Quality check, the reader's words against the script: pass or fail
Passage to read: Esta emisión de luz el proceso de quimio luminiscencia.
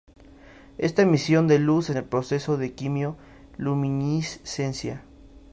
pass